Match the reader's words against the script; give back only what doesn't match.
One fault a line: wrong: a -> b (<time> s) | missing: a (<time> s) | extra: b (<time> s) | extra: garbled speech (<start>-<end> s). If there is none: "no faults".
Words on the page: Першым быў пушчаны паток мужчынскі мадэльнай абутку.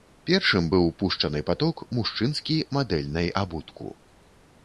no faults